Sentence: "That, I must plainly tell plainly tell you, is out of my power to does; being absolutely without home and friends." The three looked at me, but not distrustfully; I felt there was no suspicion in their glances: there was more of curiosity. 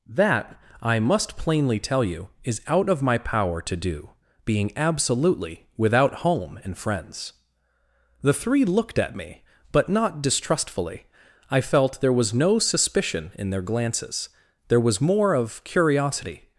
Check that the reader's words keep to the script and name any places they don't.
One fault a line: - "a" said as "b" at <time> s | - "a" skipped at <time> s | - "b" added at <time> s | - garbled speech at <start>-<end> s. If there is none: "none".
- "plainly tell" skipped at 2.0 s
- "does" said as "do" at 3.8 s